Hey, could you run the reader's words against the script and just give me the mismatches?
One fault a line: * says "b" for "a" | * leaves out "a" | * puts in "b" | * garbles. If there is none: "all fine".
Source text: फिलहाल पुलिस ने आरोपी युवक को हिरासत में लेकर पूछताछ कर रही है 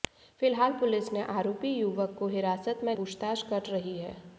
* leaves out "लेकर"